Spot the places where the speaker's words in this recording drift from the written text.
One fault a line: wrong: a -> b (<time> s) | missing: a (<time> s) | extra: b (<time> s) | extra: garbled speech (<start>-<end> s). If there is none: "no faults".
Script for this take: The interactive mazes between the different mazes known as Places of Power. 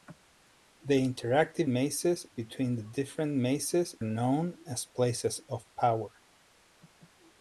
no faults